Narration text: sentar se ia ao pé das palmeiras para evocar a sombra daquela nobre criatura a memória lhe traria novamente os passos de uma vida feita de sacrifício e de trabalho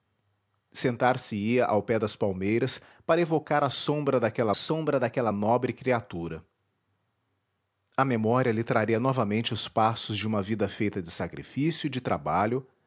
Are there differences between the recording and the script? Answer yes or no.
yes